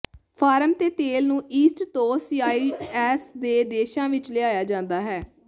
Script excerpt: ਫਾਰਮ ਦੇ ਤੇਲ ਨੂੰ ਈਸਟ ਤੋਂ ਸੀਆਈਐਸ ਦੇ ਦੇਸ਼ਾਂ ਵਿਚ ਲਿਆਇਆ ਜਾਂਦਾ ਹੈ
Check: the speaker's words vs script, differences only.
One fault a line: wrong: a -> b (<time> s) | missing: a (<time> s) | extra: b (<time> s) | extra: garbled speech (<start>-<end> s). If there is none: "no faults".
no faults